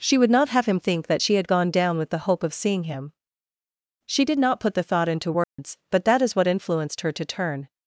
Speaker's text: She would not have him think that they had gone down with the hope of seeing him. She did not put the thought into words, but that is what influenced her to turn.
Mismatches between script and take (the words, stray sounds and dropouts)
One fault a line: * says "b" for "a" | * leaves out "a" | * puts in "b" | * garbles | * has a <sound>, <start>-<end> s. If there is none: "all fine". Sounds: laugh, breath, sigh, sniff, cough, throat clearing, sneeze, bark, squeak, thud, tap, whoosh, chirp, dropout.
* says "she" for "they"
* has a dropout, 5.4-5.6 s